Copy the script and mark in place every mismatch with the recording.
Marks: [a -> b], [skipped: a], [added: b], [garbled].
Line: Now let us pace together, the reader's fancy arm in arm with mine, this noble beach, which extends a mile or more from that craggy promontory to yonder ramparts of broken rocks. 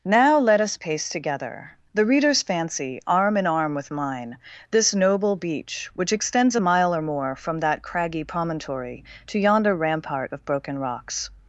Now let us pace together, the reader's fancy arm in arm with mine, this noble beach, which extends a mile or more from that craggy promontory to yonder [ramparts -> rampart] of broken rocks.